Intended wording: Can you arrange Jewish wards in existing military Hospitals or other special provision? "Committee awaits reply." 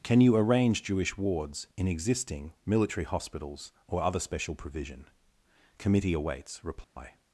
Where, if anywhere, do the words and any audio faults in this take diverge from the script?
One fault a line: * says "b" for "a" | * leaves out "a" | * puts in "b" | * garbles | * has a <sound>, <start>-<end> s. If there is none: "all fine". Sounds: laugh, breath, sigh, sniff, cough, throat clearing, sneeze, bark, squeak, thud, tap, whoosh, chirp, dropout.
* has a dropout, 6.8-7.0 s